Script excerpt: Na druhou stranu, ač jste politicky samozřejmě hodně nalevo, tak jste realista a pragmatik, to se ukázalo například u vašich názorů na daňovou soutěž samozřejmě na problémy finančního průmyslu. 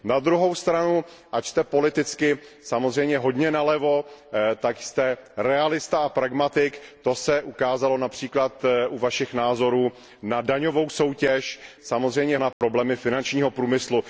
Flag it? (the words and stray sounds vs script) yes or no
yes